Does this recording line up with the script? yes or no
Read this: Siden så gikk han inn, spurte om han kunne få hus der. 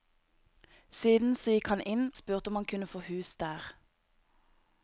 yes